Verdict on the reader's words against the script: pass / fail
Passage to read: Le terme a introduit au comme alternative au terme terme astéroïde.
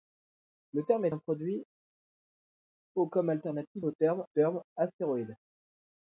pass